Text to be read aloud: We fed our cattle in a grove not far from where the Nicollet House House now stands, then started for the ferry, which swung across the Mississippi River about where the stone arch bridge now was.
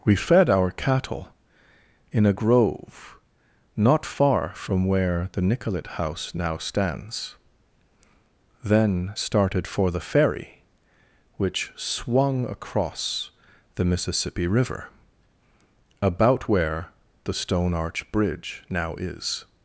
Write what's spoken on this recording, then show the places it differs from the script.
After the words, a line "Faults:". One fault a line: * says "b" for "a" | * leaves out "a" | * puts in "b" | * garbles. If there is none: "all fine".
We fed our cattle in a grove not far from where the Nicollet House now stands, then started for the ferry, which swung across the Mississippi River about where the stone arch bridge now is.
Faults:
* leaves out "House"
* says "is" for "was"